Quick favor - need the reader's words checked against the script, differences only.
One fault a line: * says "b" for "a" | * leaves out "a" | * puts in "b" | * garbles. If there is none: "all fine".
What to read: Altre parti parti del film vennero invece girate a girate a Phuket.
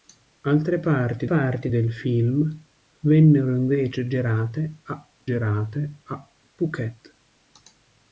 all fine